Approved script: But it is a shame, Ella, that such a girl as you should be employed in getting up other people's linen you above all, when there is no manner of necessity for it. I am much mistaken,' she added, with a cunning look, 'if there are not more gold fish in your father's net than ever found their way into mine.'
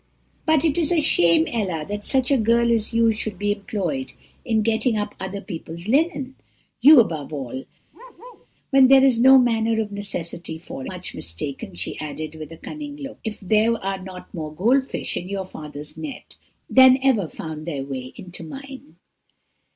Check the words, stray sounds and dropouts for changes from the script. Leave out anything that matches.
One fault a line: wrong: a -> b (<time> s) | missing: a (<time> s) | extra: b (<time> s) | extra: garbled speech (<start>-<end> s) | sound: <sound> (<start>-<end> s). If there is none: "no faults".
sound: bark (7.9-8.5 s)
missing: it I am (10.9 s)